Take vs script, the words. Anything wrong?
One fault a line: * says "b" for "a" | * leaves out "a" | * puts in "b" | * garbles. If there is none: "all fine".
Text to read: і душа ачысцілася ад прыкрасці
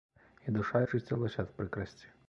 all fine